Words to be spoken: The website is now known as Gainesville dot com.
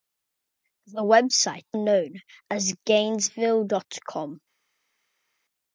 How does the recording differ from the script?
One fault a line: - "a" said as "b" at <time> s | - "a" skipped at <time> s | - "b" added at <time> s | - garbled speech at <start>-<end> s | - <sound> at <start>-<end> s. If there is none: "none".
- "is now" skipped at 1.6 s